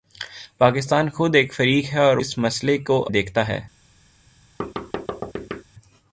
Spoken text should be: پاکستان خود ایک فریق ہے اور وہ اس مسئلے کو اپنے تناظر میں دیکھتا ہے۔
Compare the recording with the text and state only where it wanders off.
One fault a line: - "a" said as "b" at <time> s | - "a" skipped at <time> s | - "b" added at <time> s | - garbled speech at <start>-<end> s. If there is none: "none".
- "وہ" skipped at 2.2 s
- "اپنے تناظر میں" skipped at 3.0 s